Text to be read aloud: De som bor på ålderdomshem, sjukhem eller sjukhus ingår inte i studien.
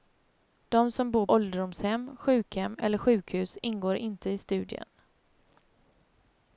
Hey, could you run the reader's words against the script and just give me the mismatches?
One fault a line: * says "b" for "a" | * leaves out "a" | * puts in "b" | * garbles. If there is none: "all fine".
* leaves out "på"